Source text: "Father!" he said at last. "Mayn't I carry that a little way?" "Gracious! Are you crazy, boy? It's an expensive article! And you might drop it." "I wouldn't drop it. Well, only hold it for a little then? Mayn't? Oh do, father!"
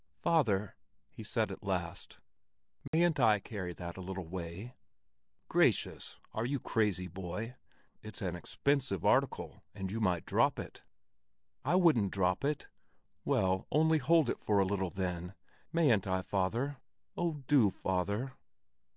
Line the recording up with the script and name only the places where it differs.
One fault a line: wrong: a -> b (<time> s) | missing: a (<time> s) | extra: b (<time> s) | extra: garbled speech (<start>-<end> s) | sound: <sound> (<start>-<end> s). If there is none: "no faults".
sound: dropout (2.9-2.9 s)
extra: I father (16.1 s)